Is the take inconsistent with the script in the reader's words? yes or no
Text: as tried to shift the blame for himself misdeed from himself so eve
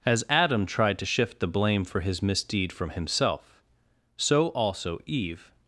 yes